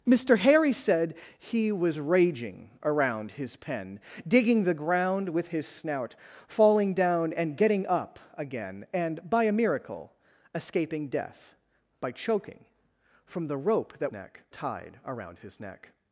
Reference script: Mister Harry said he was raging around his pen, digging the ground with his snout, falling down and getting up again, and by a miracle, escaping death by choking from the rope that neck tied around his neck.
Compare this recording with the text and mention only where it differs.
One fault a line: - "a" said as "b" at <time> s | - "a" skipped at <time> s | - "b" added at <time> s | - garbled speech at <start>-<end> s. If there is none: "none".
none